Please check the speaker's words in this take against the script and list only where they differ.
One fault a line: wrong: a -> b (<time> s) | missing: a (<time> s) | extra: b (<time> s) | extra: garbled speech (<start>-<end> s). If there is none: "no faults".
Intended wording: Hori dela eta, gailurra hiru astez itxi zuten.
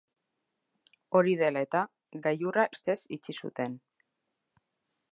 missing: hiru (2.7 s)